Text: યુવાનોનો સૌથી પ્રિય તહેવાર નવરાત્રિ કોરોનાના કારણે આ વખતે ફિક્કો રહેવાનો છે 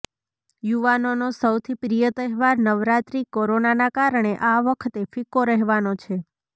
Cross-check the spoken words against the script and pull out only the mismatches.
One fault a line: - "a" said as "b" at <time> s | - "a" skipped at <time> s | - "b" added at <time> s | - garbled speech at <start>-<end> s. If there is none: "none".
none